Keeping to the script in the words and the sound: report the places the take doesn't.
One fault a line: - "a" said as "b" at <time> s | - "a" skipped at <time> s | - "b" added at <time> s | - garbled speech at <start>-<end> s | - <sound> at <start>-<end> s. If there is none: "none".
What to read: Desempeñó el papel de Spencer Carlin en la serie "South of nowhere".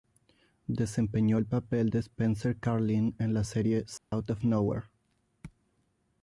- dropout at 4.0-4.1 s